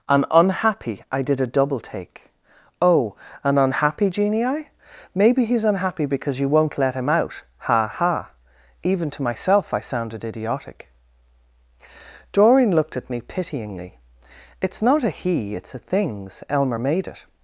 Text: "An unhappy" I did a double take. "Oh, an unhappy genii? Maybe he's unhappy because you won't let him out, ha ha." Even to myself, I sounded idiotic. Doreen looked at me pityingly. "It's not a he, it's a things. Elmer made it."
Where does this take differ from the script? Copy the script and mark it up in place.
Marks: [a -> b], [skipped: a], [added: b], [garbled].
"An unhappy" I did a double take. "Oh, an unhappy genii? Maybe he's unhappy because you won't let him out, ha ha." Even to myself, I sounded idiotic. Doreen looked at me pityingly. "It's not a he, it's a things. Elmer made it."